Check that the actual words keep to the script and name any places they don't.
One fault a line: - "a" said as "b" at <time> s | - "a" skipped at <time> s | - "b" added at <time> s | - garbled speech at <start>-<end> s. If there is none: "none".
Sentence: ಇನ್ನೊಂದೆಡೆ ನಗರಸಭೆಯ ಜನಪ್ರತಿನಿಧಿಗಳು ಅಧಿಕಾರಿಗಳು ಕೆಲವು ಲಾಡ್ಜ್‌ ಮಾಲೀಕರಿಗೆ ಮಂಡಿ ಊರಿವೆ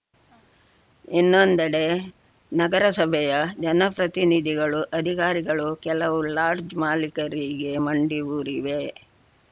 none